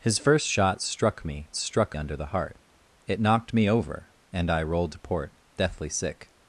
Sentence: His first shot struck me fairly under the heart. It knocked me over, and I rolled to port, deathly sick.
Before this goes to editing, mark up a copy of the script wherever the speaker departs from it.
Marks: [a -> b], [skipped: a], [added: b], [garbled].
His first shot struck me [fairly -> struck] under the heart. It knocked me over, and I rolled to port, deathly sick.